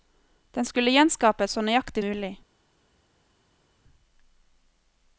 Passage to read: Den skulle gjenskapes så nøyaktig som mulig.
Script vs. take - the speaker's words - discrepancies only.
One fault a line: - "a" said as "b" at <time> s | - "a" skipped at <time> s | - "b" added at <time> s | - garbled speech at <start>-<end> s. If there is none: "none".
- "som" skipped at 2.0 s